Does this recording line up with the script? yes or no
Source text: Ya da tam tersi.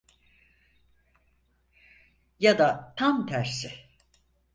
yes